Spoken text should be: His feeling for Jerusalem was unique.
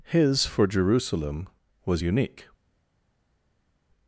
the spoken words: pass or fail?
fail